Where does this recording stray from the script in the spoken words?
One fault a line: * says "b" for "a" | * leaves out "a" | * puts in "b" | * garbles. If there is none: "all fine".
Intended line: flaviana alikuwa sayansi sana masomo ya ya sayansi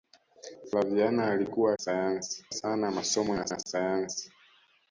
all fine